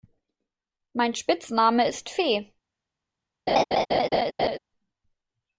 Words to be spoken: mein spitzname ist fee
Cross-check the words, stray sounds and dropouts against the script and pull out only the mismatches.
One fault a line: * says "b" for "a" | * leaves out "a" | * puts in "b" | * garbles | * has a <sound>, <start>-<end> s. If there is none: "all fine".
* has a laugh, 3.5-4.6 s